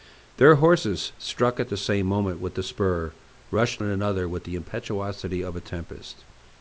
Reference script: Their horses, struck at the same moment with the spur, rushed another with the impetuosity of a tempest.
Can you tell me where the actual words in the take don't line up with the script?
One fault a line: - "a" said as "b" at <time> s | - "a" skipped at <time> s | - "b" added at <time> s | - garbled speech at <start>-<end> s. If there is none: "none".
none